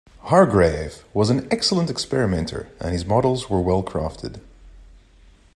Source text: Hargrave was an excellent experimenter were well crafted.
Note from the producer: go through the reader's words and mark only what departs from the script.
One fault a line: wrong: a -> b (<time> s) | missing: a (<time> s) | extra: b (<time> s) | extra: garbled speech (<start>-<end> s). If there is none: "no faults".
extra: and his models (2.8 s)